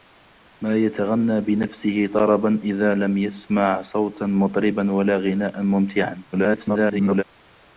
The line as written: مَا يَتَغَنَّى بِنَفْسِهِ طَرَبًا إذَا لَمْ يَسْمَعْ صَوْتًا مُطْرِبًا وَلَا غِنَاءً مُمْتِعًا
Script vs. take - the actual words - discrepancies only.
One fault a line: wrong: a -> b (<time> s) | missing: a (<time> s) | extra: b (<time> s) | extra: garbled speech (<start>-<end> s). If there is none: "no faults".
extra: garbled speech (6.3-7.2 s)